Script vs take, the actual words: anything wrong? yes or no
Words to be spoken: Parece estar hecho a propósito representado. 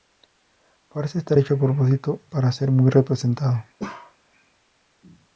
yes